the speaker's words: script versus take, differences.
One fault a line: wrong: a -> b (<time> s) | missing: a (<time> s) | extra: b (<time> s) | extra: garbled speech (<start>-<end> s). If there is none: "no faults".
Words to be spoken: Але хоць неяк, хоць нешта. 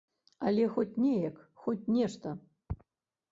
no faults